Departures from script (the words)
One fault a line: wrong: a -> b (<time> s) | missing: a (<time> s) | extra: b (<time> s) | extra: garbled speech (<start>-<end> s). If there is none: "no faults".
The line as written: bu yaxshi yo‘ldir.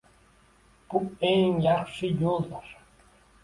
extra: eng (1.3 s)